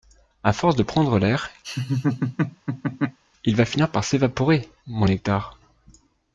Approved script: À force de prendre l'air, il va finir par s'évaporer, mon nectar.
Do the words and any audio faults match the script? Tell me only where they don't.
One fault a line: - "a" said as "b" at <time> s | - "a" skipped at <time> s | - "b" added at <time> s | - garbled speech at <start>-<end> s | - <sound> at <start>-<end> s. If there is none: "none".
- laugh at 1.6-3.2 s